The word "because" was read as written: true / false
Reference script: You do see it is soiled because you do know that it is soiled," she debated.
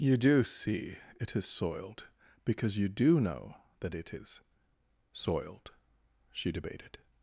true